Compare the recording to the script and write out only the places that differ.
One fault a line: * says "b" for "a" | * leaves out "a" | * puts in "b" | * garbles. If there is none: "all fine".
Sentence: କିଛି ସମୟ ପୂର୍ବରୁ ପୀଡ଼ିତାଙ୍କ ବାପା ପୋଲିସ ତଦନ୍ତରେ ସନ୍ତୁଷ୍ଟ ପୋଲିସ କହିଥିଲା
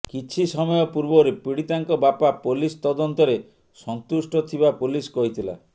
* puts in "ଥିବା"